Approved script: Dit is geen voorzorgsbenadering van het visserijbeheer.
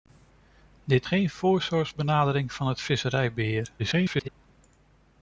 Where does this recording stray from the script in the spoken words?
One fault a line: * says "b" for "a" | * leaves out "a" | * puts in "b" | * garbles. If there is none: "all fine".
* leaves out "is"
* garbles